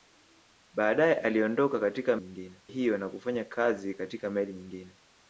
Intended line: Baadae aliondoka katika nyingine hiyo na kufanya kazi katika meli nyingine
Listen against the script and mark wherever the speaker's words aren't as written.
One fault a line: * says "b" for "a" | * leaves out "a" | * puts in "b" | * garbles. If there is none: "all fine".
all fine